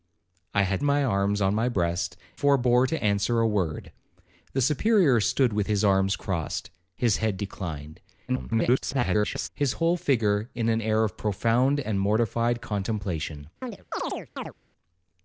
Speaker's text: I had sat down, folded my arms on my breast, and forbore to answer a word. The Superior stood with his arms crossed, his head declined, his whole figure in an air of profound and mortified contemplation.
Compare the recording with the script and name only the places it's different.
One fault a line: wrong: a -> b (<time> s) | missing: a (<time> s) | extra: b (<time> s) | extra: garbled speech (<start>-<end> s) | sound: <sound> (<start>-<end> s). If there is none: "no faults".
missing: sat down folded (0.8 s)
missing: and (2.2 s)
extra: garbled speech (8.3-9.5 s)
sound: chirp (13.6-14.5 s)